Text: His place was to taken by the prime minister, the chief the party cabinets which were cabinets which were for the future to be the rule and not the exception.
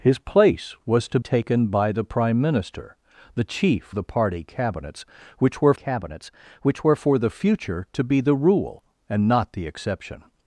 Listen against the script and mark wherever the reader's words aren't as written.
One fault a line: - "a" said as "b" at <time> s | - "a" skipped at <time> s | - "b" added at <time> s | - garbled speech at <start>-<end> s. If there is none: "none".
none